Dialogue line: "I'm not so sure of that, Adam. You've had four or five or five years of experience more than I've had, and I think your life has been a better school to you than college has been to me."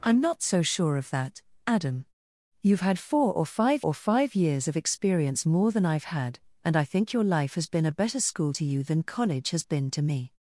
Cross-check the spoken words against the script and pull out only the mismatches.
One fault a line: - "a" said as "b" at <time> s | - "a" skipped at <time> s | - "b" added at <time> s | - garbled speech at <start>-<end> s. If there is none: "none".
none